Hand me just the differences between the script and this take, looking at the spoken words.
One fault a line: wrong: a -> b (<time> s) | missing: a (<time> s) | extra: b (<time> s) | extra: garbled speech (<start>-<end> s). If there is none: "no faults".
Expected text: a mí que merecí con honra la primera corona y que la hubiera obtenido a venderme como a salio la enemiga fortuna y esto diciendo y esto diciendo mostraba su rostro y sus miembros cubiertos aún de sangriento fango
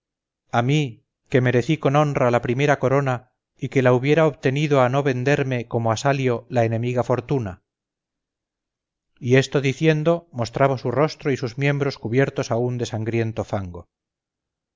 extra: no (4.9 s)
missing: y esto diciendo (10.3 s)